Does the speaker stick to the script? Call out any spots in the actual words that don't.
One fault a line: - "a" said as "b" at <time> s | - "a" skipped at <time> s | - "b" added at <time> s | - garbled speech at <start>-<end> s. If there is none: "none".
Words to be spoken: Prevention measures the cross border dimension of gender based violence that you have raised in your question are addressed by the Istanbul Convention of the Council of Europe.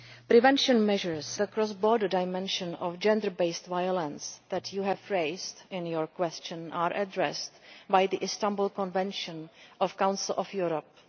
none